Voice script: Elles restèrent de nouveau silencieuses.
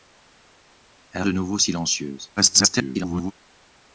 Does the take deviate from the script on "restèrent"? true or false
true